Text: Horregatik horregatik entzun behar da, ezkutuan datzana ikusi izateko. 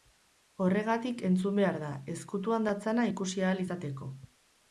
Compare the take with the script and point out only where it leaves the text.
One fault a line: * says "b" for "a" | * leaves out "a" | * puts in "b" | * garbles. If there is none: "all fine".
* leaves out "horregatik"
* puts in "ahal"